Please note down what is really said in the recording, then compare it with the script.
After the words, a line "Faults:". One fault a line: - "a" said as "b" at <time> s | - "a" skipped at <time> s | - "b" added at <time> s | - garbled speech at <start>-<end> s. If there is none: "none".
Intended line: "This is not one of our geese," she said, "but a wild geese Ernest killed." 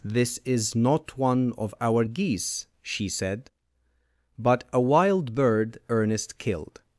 "This is not one of our geese," she said, "but a wild bird Ernest killed."
Faults:
- "geese" said as "bird" at 5.3 s